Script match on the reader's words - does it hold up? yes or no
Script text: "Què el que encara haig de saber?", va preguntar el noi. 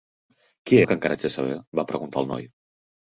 yes